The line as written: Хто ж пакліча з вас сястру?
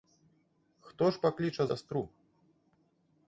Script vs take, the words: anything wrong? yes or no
yes